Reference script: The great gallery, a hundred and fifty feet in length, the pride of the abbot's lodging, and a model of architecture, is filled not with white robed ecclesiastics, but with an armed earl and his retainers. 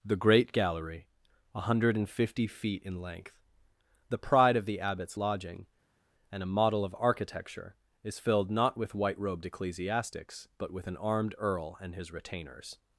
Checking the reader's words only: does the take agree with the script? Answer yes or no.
yes